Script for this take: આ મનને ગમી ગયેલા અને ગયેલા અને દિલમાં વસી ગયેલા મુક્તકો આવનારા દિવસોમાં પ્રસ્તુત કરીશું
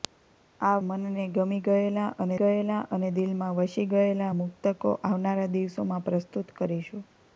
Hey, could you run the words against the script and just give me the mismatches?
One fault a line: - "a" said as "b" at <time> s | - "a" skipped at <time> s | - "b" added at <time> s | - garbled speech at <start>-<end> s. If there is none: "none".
none